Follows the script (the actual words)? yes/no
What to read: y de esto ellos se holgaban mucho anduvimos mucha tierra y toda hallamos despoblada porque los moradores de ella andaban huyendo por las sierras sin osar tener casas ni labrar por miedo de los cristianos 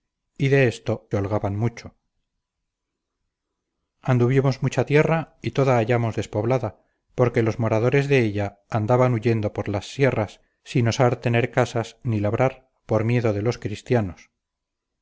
no